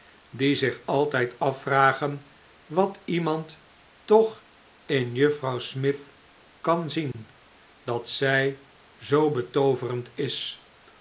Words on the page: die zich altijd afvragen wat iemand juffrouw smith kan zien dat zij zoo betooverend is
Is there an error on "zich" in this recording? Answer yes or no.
no